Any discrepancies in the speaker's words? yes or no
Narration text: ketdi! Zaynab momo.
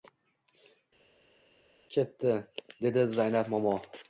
yes